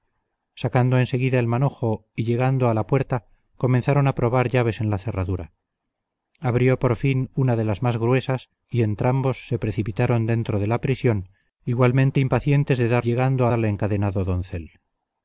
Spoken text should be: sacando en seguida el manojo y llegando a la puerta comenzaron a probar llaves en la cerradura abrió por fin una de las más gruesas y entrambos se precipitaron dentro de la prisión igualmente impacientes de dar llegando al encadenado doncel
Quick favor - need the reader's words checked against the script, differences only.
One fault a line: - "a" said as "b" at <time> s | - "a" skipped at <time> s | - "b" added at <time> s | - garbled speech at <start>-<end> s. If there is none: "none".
none